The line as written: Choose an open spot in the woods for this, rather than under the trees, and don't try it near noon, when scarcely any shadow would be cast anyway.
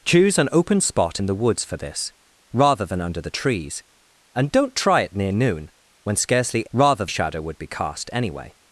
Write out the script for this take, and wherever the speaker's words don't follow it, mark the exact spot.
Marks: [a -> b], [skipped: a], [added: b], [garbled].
Choose an open spot in the woods for this, rather than under the trees, and don't try it near noon, when scarcely [any -> rather] shadow would be cast anyway.